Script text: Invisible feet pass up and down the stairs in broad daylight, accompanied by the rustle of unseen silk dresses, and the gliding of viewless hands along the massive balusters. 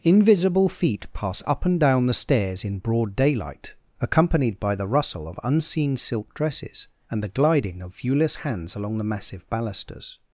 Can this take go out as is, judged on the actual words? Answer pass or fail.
pass